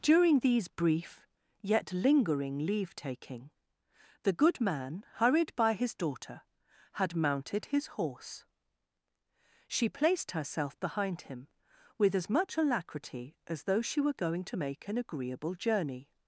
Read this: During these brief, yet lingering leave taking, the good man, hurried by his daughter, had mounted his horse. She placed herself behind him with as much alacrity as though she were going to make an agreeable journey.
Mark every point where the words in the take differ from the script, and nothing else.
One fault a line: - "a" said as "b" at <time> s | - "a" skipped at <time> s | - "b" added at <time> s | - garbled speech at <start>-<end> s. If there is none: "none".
none